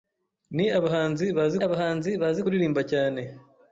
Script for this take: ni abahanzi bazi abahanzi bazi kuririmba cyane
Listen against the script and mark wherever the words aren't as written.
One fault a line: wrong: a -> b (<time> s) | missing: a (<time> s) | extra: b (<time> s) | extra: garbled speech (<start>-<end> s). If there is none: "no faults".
no faults